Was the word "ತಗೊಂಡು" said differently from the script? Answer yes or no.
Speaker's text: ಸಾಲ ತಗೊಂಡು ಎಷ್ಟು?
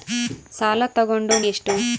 no